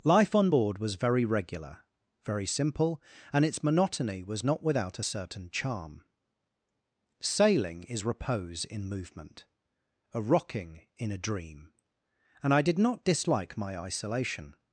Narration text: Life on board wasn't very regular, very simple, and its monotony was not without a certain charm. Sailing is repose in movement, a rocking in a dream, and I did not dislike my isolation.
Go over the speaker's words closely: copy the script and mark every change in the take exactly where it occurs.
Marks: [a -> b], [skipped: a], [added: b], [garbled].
Life on board [wasn't -> was] very regular, very simple, and its monotony was not without a certain charm. Sailing is repose in movement, a rocking in a dream, and I did not dislike my isolation.